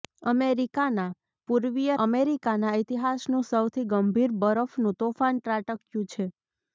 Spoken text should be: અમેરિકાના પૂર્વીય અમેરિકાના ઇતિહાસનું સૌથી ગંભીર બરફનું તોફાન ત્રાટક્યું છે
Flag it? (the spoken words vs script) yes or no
no